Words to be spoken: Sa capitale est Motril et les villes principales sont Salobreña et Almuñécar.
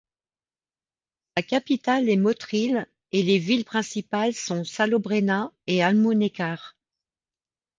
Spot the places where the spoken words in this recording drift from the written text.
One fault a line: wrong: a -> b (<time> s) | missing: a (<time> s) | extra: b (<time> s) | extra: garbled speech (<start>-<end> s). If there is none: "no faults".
no faults